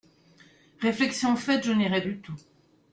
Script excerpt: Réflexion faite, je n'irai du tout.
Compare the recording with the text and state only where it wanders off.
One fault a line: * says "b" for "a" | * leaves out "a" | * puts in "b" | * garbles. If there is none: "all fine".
all fine